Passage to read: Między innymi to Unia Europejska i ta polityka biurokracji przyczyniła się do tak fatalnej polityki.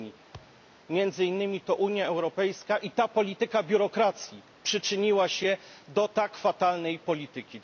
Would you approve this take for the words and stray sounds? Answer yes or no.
no